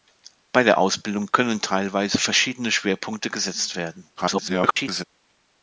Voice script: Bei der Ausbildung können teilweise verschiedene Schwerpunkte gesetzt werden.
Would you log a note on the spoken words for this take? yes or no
yes